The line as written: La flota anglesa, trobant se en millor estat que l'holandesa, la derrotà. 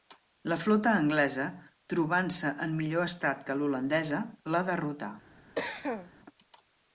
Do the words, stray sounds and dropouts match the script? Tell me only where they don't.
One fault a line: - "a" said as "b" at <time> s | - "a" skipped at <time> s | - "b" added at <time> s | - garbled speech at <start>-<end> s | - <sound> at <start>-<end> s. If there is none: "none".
- cough at 5.6-6.1 s